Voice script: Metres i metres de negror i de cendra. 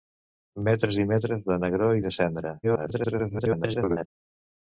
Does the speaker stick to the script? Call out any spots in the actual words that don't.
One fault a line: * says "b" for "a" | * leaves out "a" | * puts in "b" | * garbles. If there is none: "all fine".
* garbles